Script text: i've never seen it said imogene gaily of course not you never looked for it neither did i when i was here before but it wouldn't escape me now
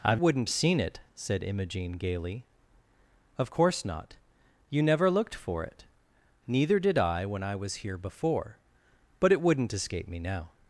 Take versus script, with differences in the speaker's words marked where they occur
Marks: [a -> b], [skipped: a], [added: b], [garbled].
i've [never -> wouldn't] seen it said imogene gaily of course not you never looked for it neither did i when i was here before but it wouldn't escape me now